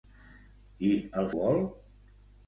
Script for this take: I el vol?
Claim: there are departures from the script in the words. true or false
false